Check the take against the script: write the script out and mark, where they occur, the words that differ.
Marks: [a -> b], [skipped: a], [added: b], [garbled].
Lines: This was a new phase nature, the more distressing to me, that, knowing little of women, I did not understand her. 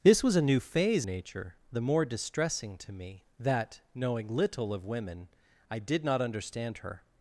This was a new phase nature, the more distressing to me, that, knowing little of women, I did not understand her.